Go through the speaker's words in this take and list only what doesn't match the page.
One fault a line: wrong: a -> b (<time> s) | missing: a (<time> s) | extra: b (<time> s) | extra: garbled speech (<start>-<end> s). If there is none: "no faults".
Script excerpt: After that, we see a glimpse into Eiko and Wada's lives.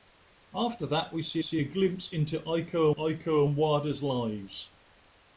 extra: see (1.4 s)
extra: Eiko (2.9 s)